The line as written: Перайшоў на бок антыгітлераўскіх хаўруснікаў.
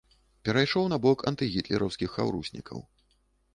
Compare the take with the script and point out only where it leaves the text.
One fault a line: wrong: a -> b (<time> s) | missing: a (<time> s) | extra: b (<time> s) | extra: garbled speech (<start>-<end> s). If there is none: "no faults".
no faults